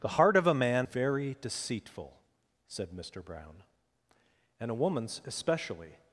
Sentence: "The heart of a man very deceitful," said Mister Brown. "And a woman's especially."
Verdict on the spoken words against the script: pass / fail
pass